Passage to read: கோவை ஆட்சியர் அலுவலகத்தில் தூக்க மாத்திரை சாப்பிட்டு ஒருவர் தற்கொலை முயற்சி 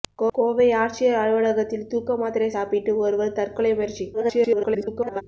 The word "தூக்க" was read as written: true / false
true